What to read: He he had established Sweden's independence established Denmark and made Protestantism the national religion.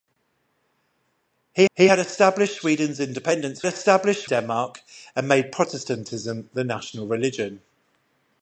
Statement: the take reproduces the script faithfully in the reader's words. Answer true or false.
true